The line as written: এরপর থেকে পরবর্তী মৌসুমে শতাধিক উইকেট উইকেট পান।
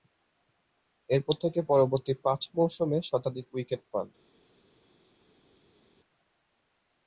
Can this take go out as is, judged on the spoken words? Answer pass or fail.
fail